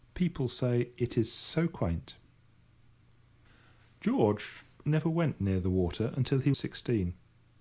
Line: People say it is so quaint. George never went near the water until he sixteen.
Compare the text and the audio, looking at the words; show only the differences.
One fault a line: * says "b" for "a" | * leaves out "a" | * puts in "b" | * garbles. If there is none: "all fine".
all fine